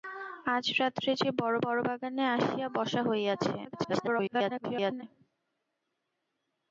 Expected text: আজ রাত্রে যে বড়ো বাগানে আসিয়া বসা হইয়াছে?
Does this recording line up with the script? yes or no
no